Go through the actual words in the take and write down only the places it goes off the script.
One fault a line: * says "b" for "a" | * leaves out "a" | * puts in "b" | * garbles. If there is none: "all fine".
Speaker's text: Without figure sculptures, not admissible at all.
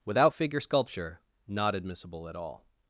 * says "sculpture" for "sculptures"